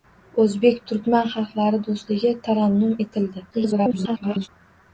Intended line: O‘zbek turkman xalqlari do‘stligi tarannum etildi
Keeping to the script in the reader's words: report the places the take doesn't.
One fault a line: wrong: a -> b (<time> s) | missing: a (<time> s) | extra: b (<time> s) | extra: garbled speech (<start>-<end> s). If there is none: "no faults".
extra: garbled speech (3.5-4.5 s)